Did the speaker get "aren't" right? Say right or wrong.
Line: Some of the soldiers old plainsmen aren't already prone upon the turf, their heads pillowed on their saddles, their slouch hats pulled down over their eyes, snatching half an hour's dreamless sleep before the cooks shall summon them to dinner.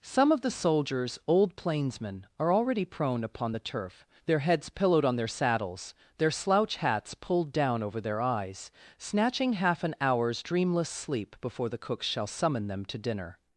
wrong